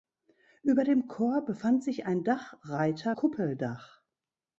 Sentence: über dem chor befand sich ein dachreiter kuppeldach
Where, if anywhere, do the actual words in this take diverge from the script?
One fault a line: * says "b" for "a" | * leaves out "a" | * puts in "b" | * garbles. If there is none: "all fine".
all fine